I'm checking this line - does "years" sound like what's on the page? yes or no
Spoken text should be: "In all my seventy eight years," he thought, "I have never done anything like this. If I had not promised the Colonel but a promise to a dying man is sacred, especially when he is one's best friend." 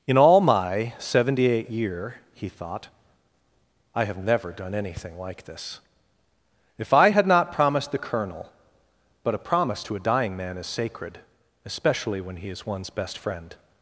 no